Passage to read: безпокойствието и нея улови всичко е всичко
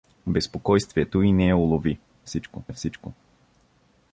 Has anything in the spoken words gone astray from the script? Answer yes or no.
no